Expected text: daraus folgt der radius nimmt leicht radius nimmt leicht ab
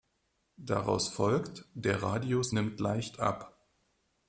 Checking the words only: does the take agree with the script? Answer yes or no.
no